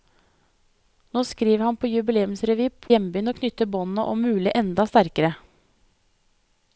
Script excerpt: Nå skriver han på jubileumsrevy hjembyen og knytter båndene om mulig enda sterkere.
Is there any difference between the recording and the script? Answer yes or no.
no